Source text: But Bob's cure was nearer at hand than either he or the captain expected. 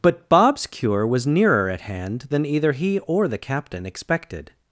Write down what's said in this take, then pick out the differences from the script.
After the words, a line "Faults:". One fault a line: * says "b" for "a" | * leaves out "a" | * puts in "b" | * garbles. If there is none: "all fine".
But Bob's cure was nearer at hand than either he or the captain expected.
Faults:
all fine